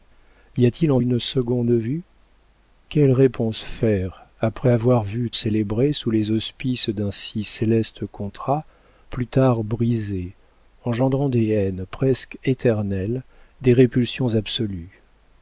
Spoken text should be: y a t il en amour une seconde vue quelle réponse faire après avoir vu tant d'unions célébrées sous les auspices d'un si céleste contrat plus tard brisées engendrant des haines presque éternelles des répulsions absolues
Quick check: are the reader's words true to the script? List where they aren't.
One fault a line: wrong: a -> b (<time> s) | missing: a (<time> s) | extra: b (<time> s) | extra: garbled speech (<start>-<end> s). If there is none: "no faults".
missing: amour (1.0 s)
missing: tant d'unions (5.3 s)